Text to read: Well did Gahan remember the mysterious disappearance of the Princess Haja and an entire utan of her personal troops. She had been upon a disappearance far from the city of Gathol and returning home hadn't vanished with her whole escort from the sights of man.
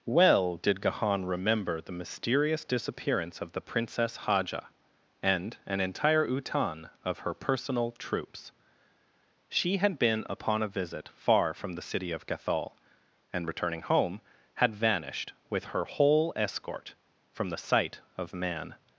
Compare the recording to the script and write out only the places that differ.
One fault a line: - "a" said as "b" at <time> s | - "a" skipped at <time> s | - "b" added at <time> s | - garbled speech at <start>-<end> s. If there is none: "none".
- "disappearance" said as "visit" at 10.7 s
- "hadn't" said as "had" at 14.5 s
- "sights" said as "sight" at 17.6 s